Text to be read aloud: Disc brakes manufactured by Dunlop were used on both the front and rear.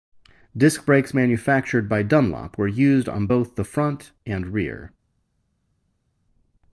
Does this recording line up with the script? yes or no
yes